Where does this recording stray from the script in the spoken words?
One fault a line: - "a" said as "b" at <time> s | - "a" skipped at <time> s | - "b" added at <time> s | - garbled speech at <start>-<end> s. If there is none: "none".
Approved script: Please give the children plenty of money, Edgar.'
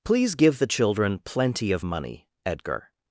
none